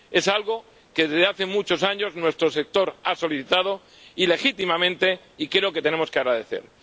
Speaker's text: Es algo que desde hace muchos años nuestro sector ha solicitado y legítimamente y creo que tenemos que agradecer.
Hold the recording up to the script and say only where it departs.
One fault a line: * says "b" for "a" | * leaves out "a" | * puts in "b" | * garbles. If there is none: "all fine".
all fine